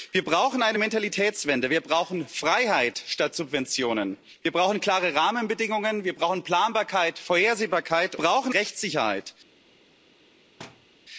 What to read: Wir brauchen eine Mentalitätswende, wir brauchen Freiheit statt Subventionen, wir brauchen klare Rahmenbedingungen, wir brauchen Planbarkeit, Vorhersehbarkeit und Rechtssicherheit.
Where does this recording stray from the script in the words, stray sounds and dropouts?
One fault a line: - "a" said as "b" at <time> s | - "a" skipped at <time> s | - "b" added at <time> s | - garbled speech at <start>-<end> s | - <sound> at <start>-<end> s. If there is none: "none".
- "und" said as "brauchen" at 8.2 s
- thud at 10.6-10.9 s